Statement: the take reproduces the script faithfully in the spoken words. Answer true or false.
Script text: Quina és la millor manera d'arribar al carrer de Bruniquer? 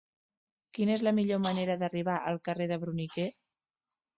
true